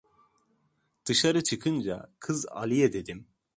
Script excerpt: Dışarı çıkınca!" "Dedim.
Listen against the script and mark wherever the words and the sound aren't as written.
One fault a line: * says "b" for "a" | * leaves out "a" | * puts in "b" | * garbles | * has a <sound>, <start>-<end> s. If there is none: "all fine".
* puts in "Kız Aliye"